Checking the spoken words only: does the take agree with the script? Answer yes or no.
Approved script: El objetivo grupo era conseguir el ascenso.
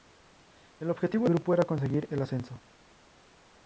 yes